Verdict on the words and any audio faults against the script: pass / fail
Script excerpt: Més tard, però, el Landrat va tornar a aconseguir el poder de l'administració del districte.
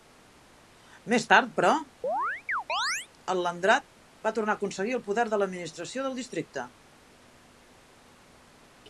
fail